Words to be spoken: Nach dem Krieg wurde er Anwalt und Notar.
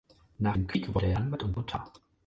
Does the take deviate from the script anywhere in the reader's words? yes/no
no